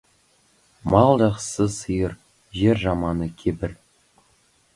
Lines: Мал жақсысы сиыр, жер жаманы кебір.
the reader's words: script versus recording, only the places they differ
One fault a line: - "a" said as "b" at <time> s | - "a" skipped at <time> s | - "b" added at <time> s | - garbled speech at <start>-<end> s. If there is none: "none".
none